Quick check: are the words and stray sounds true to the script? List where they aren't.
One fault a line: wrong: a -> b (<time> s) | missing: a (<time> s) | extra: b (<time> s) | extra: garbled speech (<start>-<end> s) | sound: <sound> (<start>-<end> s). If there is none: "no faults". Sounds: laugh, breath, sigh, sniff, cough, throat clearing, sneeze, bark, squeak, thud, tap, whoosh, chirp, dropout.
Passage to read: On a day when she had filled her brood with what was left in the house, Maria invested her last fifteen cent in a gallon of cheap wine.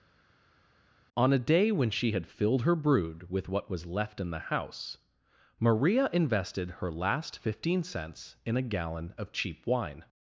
wrong: cent -> cents (7.8 s)